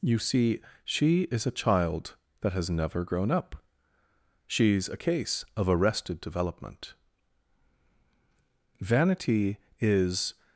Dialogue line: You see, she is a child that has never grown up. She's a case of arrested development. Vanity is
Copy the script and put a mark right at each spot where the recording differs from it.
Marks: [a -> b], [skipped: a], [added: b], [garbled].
You see, she is a child that has never grown up. She's a case of arrested development. Vanity is